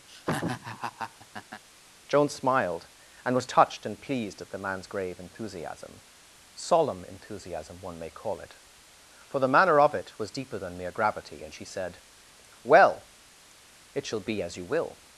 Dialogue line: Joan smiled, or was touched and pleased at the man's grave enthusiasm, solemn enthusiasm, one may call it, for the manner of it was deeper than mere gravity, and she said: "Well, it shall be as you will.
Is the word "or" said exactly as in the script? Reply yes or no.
no